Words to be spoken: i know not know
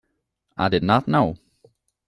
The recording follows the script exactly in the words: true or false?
false